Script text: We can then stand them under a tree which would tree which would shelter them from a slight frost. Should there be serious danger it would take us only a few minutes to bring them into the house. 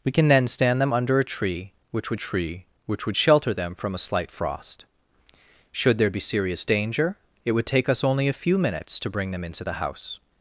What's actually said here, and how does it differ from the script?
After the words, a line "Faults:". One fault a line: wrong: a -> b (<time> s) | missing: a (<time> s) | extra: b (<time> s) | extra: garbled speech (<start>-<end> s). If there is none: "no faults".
We can then stand them under a tree which would tree which would shelter them from a slight frost. Should there be serious danger it would take us only a few minutes to bring them into the house.
Faults:
no faults